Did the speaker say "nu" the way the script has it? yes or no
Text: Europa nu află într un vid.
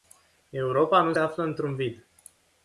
yes